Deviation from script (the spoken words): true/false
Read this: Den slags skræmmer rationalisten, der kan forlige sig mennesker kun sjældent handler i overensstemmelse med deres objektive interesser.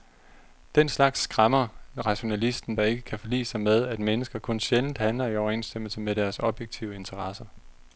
true